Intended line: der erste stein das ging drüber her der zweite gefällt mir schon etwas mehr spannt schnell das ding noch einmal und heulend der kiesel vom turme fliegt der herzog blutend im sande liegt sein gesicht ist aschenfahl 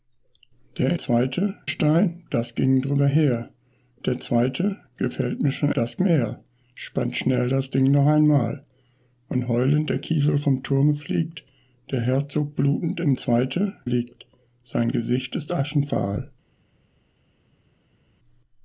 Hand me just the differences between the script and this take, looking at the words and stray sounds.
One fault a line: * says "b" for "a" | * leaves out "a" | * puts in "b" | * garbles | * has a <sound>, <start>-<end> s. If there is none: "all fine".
* says "zweite" for "erste"
* says "das" for "etwas"
* says "zweite" for "sande"